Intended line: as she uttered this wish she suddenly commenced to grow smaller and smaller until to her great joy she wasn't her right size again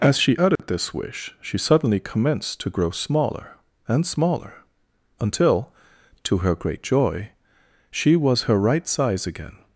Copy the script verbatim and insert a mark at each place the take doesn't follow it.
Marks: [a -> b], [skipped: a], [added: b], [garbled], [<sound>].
as she uttered [dropout] this wish she suddenly commenced to grow smaller and smaller until to her great joy she [wasn't -> was] her right size again